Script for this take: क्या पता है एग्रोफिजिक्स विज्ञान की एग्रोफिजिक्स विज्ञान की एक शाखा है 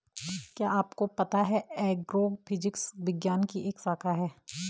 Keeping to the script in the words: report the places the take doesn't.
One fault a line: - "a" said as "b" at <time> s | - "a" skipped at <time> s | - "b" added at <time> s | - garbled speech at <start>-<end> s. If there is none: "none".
- "आपको" added at 0.7 s
- "एग्रोफिजिक्स विज्ञान की" skipped at 3.7 s